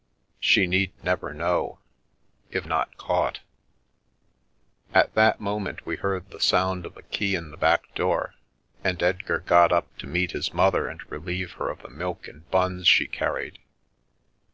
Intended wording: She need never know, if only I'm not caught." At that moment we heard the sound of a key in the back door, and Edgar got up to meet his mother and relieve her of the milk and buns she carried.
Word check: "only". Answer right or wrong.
wrong